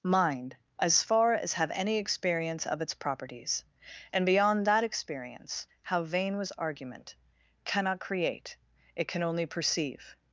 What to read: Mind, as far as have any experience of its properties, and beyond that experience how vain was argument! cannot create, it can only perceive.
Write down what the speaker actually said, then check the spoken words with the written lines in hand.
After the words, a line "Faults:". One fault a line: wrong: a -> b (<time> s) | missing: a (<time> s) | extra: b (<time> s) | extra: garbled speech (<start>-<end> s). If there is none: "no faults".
Mind, as far as have any experience of its properties, and beyond that experience how vain was argument! cannot create, it can only perceive.
Faults:
no faults